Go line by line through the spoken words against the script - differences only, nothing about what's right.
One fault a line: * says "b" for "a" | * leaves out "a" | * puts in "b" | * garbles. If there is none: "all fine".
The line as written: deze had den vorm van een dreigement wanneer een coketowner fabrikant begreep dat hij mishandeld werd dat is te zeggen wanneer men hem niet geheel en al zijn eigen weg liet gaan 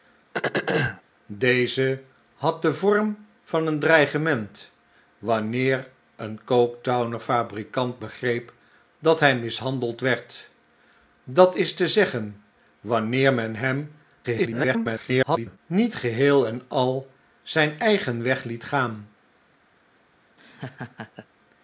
* garbles